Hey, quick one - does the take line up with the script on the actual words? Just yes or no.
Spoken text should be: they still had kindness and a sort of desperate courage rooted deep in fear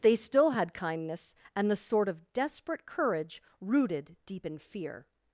no